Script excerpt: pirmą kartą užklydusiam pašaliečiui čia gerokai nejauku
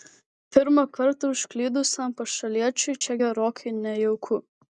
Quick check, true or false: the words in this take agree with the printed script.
true